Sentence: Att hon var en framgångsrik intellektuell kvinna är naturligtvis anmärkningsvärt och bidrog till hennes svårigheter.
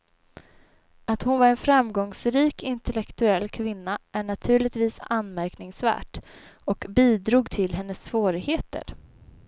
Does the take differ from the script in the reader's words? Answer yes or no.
no